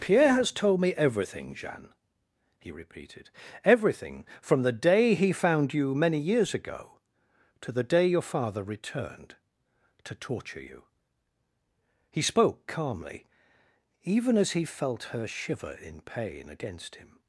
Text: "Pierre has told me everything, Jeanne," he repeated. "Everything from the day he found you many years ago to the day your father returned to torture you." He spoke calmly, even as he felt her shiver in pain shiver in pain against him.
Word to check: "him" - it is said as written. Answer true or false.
true